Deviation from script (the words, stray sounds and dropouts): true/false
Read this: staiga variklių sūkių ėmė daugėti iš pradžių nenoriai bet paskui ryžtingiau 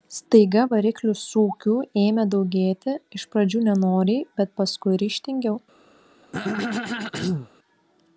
true